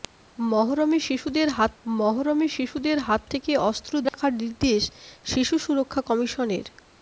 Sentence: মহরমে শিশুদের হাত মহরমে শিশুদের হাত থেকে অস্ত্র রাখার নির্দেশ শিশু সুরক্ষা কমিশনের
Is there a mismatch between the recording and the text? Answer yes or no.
no